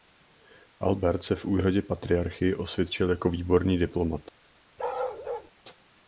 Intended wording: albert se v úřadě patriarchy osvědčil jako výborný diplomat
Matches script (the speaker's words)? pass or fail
pass